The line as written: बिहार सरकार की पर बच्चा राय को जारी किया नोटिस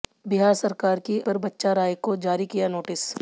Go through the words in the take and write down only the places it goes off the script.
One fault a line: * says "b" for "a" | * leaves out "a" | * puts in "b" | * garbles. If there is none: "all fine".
all fine